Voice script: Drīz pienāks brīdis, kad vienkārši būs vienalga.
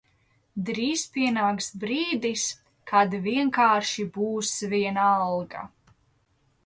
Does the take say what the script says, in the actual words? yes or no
yes